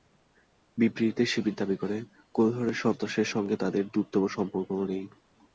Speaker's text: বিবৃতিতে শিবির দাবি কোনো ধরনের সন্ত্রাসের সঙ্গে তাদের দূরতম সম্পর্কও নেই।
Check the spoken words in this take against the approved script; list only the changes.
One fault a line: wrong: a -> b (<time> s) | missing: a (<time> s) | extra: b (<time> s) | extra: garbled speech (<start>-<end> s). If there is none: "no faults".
extra: করে (1.8 s)